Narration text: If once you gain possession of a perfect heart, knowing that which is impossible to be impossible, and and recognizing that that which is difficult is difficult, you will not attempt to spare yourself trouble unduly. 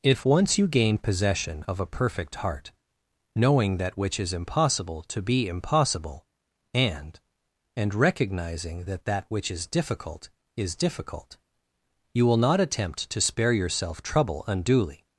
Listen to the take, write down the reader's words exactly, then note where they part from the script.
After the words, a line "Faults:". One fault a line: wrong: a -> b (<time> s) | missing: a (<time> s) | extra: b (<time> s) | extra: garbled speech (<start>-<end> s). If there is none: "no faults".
If once you gain possession of a perfect heart, knowing that which is impossible to be impossible, and and recognizing that that which is difficult is difficult, you will not attempt to spare yourself trouble unduly.
Faults:
no faults